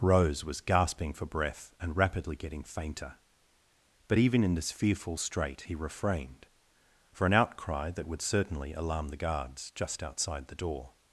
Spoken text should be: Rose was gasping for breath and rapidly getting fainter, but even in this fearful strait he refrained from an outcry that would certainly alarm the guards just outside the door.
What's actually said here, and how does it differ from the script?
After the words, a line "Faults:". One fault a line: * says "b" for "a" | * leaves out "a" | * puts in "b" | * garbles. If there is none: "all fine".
Rose was gasping for breath and rapidly getting fainter, but even in this fearful strait he refrained for an outcry that would certainly alarm the guards just outside the door.
Faults:
* says "for" for "from"